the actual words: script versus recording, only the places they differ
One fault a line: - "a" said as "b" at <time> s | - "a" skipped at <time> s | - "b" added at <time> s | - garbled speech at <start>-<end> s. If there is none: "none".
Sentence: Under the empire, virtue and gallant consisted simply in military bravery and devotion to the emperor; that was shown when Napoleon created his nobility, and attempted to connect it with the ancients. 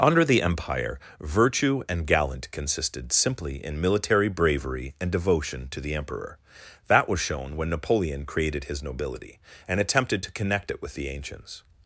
none